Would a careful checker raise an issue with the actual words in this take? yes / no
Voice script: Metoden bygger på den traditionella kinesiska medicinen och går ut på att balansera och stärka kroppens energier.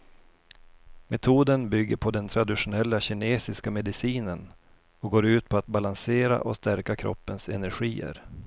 no